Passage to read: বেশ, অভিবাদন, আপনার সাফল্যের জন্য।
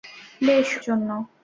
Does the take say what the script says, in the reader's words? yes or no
no